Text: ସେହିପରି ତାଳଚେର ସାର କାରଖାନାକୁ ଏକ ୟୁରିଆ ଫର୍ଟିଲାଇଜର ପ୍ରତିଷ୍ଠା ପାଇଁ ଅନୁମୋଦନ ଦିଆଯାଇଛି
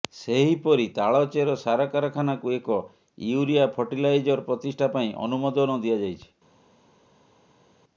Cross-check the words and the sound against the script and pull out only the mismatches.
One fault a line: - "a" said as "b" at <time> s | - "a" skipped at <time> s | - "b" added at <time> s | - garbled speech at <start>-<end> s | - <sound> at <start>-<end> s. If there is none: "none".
none